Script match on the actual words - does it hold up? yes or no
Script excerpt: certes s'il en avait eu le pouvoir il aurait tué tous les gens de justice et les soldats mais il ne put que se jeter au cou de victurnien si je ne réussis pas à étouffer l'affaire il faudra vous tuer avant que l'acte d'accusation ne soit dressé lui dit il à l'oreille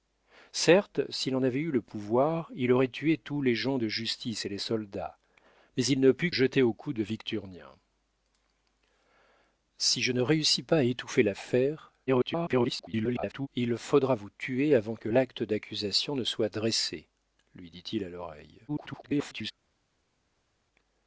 no